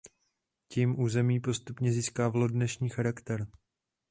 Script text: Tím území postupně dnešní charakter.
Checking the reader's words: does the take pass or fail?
fail